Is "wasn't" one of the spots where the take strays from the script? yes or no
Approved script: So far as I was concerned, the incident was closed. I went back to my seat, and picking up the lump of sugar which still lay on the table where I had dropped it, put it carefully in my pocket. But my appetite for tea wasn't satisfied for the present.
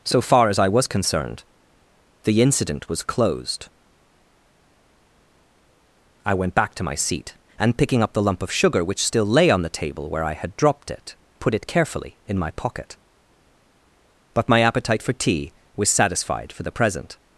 yes